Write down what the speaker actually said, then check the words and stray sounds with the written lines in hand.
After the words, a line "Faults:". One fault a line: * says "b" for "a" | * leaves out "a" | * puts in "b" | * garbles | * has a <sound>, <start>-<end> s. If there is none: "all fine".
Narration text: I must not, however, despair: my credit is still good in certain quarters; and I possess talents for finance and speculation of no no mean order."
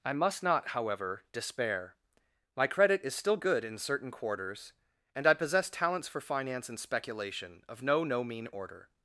I must not, however, despair: my credit is still good in certain quarters; and I possess talents for finance and speculation of no no mean order."
Faults:
all fine